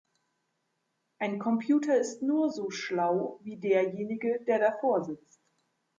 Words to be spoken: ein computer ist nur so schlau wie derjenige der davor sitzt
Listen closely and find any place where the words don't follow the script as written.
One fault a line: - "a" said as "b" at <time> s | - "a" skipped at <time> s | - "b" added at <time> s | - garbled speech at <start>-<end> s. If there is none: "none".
none